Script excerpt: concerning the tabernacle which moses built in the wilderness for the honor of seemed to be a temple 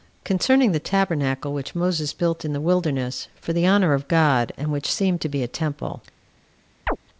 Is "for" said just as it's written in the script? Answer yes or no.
yes